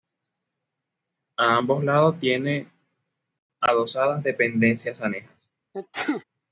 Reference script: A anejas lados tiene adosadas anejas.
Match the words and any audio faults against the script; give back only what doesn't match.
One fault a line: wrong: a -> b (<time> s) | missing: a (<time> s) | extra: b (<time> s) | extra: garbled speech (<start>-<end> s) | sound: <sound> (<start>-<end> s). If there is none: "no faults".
wrong: anejas -> ambos (1.6 s)
extra: dependencias (4.2 s)
sound: sneeze (5.7-6.2 s)